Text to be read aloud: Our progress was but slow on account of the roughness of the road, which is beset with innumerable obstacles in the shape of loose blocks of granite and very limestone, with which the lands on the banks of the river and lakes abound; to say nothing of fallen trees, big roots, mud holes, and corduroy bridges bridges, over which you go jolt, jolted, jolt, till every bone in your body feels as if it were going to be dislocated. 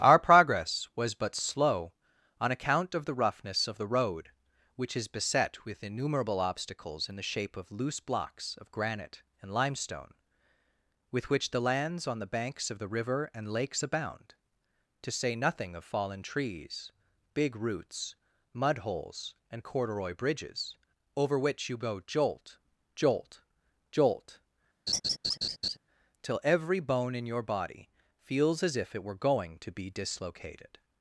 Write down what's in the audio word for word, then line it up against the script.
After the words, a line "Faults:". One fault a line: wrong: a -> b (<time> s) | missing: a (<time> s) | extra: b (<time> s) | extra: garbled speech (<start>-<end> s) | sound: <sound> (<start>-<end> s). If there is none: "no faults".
Our progress was but slow on account of the roughness of the road, which is beset with innumerable obstacles in the shape of loose blocks of granite and limestone, with which the lands on the banks of the river and lakes abound; to say nothing of fallen trees, big roots, mud holes, and corduroy bridges, over which you go jolt, jolt, jolt, till every bone in your body feels as if it were going to be dislocated.
Faults:
missing: very (9.5 s)
missing: bridges (20.8 s)
wrong: jolted -> jolt (22.9 s)
sound: laugh (24.9-25.8 s)